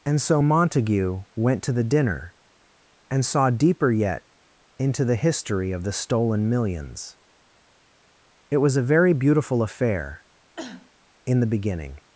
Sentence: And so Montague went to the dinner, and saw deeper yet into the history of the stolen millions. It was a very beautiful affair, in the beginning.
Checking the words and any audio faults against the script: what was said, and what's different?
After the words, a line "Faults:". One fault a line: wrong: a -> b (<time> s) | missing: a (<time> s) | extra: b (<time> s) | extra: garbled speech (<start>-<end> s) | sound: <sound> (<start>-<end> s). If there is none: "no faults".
And so Montague went to the dinner, and saw deeper yet into the history of the stolen millions. It was a very beautiful affair, in the beginning.
Faults:
sound: cough (10.6-10.9 s)